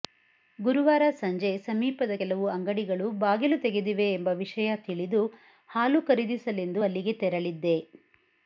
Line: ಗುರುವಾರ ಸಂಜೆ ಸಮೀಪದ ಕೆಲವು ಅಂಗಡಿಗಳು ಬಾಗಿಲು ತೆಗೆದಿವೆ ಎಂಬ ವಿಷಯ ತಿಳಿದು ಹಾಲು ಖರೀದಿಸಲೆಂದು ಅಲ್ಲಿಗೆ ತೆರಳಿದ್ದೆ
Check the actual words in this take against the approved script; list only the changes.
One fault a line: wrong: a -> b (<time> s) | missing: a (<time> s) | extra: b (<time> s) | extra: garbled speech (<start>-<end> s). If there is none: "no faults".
no faults